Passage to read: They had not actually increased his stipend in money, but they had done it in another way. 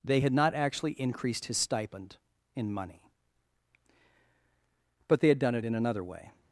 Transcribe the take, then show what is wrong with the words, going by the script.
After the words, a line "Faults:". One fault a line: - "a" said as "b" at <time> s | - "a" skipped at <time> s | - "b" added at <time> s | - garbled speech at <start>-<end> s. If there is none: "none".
They had not actually increased his stipend in money, but they had done it in another way.
Faults:
none